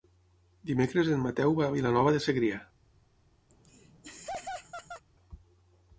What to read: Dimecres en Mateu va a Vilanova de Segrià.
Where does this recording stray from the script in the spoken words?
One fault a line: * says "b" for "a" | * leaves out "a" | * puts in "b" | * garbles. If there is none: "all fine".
all fine